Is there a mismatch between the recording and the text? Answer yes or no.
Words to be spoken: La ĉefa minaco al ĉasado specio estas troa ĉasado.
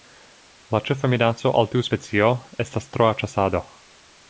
yes